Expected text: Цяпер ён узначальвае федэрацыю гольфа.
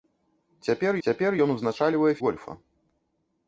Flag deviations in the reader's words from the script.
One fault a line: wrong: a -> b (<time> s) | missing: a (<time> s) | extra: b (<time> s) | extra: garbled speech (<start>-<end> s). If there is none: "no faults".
extra: цяпер (1.1 s)
missing: федэрацыю (2.1 s)